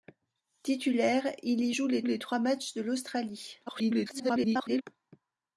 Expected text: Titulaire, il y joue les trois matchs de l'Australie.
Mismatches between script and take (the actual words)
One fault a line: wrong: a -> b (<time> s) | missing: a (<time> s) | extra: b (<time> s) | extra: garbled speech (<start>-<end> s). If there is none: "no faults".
extra: les (2.0 s)
extra: garbled speech (3.7-4.8 s)